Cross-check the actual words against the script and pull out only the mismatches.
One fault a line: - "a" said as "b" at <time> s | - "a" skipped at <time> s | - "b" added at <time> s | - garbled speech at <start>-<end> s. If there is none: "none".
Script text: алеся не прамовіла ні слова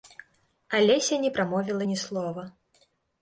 none